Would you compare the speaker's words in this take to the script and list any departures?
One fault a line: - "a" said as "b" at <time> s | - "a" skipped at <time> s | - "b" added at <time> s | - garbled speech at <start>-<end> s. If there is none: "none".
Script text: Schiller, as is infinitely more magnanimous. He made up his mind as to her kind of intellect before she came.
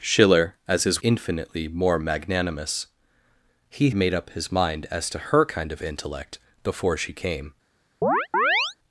none